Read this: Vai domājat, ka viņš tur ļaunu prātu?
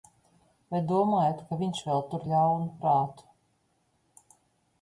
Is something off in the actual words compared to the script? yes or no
yes